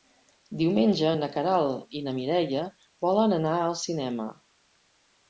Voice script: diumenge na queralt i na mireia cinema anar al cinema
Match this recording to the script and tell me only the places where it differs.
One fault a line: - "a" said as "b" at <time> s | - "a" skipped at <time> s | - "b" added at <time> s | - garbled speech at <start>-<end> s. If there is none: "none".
- "cinema" said as "volen" at 3.1 s